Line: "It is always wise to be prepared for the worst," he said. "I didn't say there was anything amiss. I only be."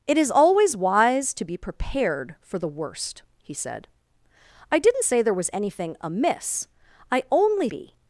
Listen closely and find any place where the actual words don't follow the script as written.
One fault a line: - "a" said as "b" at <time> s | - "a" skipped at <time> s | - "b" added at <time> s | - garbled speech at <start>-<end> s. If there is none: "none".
none